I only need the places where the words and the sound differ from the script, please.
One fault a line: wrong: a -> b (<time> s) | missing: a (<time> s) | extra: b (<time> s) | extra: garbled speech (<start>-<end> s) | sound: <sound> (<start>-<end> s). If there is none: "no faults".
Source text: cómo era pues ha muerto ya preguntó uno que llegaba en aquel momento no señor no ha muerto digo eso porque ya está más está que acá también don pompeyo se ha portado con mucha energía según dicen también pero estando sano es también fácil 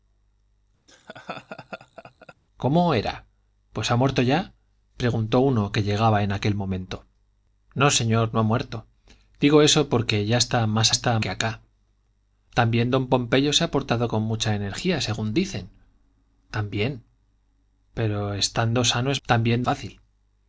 sound: laugh (0.9-2.3 s)